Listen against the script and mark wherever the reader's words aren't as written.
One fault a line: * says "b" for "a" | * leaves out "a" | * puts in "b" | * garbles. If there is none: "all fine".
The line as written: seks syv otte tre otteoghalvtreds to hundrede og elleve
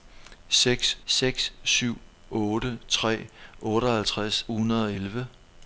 * puts in "seks"
* leaves out "to"